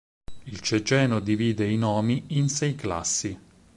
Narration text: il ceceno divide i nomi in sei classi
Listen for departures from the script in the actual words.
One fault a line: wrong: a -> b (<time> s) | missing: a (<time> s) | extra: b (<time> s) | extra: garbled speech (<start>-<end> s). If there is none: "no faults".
no faults